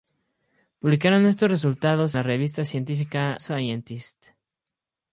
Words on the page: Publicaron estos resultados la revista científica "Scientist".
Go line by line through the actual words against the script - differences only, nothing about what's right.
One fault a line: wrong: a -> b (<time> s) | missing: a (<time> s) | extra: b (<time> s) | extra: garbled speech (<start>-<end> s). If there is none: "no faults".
no faults